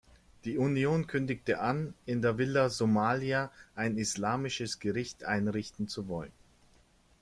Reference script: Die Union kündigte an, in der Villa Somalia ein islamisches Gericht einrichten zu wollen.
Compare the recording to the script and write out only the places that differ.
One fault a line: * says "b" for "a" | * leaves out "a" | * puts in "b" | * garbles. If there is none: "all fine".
all fine